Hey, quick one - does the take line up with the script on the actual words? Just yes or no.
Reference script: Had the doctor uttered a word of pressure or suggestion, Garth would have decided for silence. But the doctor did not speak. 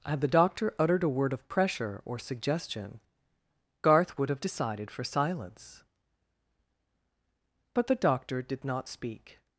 yes